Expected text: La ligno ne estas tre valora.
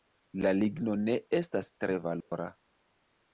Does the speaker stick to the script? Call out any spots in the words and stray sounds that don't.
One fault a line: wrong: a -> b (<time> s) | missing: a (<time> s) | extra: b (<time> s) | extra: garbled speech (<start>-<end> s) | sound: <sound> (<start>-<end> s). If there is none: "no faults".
sound: dropout (2.2-2.3 s)